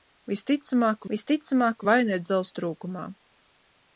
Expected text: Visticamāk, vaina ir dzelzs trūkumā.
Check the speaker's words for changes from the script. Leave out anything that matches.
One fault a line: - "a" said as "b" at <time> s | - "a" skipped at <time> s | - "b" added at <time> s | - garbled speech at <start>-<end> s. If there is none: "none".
- "visticamāk" added at 1.1 s